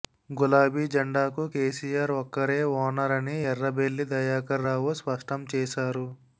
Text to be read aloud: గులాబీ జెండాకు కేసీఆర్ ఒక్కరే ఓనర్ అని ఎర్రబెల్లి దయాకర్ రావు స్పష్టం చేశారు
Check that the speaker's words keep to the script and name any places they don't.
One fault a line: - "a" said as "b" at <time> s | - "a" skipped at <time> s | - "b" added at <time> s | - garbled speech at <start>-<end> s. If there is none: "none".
none